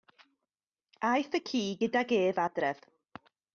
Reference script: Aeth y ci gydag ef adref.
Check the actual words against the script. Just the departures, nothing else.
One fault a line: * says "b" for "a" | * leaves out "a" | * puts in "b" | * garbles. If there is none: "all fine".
all fine